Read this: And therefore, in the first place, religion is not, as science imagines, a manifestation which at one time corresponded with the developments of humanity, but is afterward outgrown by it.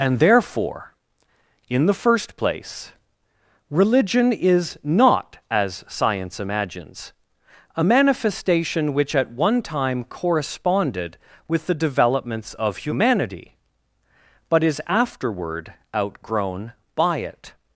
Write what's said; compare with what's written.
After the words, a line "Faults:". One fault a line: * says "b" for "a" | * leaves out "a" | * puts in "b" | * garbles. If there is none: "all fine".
And therefore, in the first place, religion is not, as science imagines, a manifestation which at one time corresponded with the developments of humanity, but is afterward outgrown by it.
Faults:
all fine